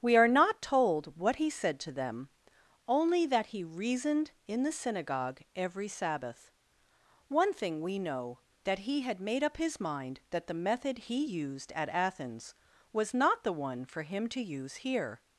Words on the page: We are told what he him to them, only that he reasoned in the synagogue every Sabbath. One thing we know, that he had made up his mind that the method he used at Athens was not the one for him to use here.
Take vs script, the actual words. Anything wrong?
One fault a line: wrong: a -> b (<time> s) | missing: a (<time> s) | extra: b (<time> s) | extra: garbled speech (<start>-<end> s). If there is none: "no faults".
extra: not (0.3 s)
wrong: him -> said (1.5 s)